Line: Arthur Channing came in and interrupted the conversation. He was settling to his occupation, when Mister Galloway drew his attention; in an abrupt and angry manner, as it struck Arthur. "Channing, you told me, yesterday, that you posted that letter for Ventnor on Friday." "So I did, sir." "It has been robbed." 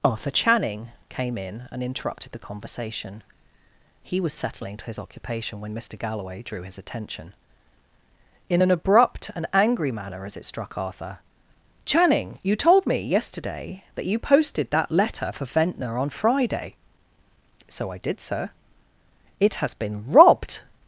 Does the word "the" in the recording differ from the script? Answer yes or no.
no